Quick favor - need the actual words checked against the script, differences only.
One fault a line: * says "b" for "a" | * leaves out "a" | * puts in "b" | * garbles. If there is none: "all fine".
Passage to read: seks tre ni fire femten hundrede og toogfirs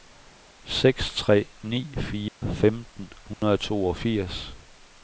all fine